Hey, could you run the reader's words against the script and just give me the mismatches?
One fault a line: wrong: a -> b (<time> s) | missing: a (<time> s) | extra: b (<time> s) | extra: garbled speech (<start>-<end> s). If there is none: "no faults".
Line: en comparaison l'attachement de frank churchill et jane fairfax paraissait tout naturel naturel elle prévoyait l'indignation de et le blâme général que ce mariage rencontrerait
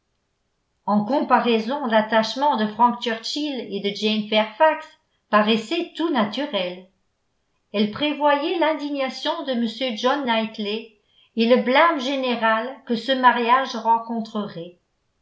extra: de (3.8 s)
missing: naturel (6.9 s)
extra: m john knightley (9.5 s)